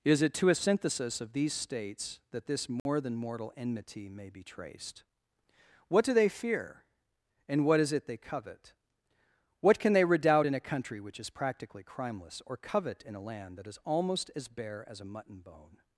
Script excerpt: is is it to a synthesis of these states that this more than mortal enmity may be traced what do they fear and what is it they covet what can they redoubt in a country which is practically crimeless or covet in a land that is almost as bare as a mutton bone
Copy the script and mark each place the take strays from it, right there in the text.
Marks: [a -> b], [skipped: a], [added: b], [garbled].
is [skipped: is] it to a synthesis of these states that this more than mortal enmity may be traced what do they fear and what is it they covet what can they redoubt in a country which is practically crimeless or covet in a land that is almost as bare as a mutton bone